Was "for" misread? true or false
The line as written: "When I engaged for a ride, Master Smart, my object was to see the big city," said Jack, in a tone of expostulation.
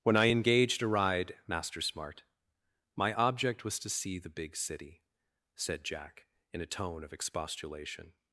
true